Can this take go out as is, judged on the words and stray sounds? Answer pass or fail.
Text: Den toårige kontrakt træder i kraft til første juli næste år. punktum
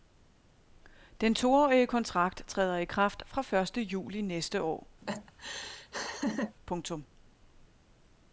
fail